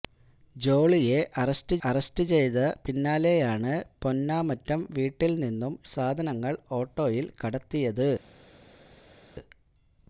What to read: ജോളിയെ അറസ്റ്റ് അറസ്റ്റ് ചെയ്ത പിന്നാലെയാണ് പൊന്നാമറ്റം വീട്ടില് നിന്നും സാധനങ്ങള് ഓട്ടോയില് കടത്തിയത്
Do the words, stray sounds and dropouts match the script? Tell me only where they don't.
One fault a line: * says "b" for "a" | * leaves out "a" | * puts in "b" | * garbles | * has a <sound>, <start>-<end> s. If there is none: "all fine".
all fine